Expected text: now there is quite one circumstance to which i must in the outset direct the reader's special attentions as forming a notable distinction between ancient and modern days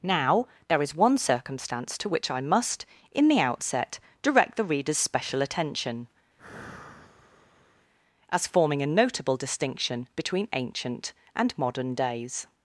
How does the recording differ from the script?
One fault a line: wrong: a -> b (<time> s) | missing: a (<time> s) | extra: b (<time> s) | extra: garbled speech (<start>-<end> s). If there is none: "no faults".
missing: quite (0.9 s)
wrong: attentions -> attention (5.4 s)